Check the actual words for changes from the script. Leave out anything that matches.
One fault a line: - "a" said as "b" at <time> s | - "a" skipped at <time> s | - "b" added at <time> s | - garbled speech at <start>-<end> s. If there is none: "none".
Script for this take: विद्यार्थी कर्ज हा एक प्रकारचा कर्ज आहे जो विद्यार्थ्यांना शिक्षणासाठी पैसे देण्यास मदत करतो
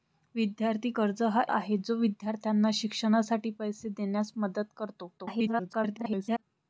- "एक प्रकारचा कर्ज" skipped at 1.4 s
- garbled speech at 5.2-6.4 s